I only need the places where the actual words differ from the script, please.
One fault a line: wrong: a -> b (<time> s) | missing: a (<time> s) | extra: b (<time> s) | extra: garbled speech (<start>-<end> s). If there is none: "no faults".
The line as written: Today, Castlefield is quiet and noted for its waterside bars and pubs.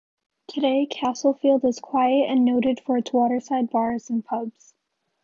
no faults